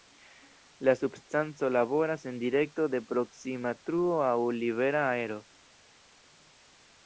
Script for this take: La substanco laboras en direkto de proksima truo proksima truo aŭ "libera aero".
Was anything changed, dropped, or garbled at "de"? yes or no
no